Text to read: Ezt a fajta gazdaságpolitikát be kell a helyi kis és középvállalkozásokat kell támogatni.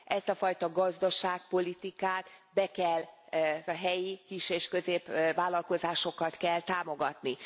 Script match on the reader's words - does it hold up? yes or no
yes